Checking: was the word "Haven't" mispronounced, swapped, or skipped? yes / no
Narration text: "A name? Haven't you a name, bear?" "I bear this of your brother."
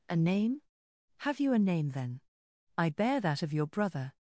yes